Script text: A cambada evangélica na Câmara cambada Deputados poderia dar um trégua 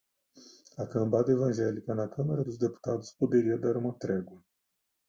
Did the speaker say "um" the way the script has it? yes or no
no